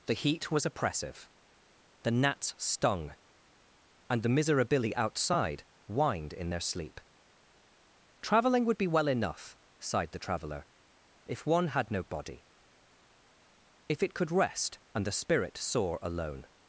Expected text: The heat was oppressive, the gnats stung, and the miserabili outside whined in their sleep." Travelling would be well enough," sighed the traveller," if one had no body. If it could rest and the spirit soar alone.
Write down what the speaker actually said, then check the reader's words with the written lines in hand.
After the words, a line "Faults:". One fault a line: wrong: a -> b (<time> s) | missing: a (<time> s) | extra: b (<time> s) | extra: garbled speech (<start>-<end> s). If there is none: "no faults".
The heat was oppressive, the gnats stung, and the miserabili outside whined in their sleep." Travelling would be well enough," sighed the traveller," if one had no body. If it could rest and the spirit soar alone.
Faults:
no faults